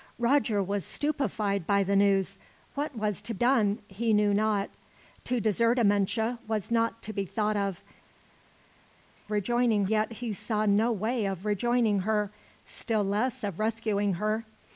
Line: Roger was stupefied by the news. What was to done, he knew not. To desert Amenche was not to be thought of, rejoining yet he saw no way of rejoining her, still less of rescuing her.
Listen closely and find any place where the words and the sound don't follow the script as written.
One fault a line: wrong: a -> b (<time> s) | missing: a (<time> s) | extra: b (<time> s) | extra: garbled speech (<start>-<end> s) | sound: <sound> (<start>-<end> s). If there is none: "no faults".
no faults